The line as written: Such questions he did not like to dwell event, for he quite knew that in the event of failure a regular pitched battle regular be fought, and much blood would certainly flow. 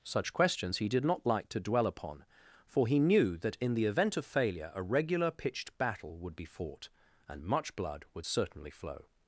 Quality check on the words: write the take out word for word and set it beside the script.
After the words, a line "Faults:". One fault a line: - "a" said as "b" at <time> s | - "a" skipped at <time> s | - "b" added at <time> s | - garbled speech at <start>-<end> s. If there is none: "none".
Such questions he did not like to dwell upon, for he knew that in the event of failure a regular pitched battle would be fought, and much blood would certainly flow.
Faults:
- "event" said as "upon" at 1.9 s
- "quite" skipped at 3.0 s
- "regular" said as "would" at 6.2 s